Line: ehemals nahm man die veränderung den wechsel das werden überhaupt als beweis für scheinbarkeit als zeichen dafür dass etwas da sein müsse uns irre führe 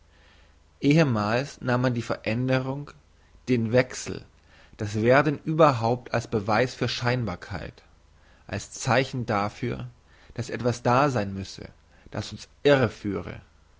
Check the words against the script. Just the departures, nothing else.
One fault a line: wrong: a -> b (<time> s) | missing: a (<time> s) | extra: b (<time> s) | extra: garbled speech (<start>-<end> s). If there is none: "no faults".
extra: das (12.1 s)